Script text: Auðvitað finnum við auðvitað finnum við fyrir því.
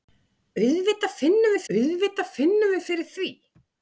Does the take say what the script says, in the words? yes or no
yes